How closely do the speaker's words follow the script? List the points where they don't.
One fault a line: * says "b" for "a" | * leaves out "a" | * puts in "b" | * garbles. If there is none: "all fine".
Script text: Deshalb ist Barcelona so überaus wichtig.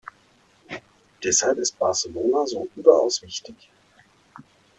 all fine